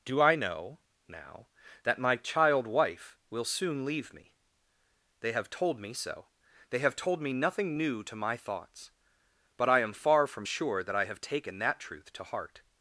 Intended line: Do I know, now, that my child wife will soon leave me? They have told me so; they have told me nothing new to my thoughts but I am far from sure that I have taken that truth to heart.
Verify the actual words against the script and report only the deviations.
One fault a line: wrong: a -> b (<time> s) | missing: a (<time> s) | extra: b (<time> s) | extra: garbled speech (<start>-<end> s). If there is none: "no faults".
no faults